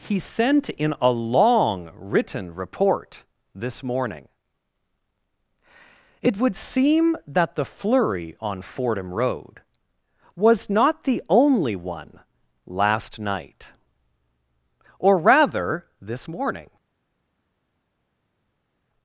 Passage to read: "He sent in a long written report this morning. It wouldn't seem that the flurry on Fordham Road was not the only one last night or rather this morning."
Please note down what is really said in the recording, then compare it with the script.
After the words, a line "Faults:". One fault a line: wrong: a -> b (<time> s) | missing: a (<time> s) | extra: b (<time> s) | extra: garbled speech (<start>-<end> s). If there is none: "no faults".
"He sent in a long written report this morning. It would seem that the flurry on Fordham Road was not the only one last night or rather this morning."
Faults:
wrong: wouldn't -> would (6.4 s)